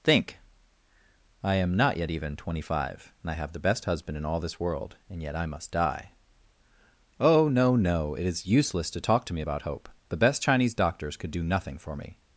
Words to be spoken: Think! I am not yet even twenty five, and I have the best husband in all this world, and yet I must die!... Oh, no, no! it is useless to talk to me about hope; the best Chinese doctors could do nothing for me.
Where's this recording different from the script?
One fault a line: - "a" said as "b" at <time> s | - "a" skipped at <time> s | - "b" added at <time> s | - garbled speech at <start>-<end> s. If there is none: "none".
none